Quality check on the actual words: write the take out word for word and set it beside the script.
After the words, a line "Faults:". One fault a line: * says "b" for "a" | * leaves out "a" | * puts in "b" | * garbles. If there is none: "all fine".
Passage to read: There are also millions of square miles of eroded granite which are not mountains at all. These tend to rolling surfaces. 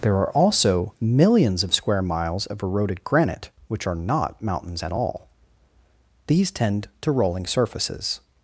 There are also millions of square miles of eroded granite which are not mountains at all. These tend to rolling surfaces.
Faults:
all fine